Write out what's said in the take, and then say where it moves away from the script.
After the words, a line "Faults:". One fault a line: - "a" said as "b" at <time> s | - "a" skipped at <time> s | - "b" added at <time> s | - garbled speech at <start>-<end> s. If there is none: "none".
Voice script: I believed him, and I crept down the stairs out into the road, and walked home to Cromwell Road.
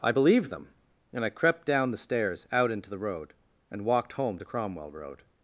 I believed them, and I crept down the stairs out into the road, and walked home to Cromwell Road.
Faults:
- "him" said as "them" at 0.5 s